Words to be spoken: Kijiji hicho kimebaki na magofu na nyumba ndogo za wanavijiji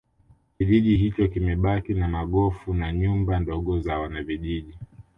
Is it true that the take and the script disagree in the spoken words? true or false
false